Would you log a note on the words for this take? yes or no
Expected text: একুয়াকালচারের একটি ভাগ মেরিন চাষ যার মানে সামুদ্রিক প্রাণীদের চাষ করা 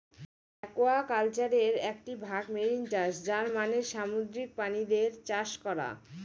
no